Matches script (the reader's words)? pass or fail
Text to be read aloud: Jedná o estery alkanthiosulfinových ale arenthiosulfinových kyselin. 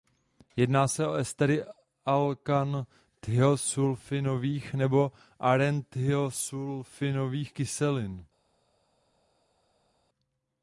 fail